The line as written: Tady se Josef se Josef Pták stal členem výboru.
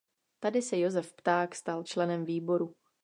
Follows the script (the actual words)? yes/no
no